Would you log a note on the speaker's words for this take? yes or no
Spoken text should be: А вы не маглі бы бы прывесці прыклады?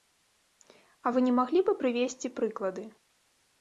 yes